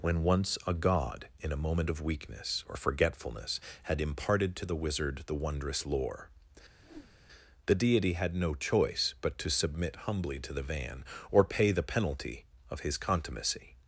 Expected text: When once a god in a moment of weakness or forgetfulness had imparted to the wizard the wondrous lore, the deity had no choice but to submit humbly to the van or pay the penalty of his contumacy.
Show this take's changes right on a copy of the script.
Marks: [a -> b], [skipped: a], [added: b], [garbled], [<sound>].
When once a god in a moment of weakness or forgetfulness had imparted to the wizard the wondrous lore, [whoosh] the deity had no choice but to submit humbly to the van or pay the penalty of his contumacy.